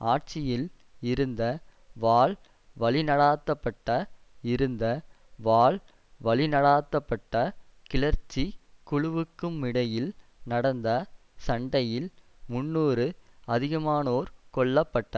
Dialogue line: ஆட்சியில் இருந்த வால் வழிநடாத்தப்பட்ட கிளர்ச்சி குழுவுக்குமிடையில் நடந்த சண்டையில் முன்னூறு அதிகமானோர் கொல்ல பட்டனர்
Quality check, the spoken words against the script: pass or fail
fail